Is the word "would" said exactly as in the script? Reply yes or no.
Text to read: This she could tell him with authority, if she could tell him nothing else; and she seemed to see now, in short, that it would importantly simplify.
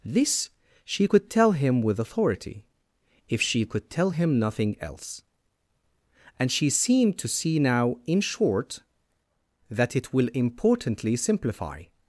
no